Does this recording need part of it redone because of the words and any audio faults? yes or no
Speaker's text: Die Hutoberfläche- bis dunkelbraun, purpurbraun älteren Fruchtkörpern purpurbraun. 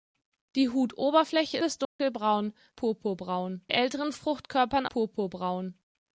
yes